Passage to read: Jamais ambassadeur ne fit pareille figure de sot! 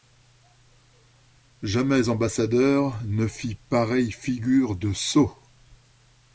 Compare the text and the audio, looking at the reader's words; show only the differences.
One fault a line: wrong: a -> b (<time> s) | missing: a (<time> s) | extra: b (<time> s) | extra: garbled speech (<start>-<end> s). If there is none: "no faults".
no faults